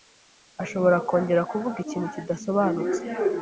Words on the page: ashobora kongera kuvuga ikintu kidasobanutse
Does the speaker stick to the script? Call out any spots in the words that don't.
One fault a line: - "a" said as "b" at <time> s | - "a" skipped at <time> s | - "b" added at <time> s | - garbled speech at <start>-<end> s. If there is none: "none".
none